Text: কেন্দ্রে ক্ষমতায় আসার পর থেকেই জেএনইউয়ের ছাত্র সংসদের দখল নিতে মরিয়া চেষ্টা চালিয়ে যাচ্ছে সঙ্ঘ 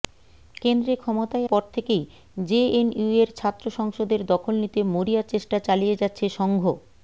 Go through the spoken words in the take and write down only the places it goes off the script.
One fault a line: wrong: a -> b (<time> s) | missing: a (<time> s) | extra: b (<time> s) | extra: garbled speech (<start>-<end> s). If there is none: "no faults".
missing: আসার (1.5 s)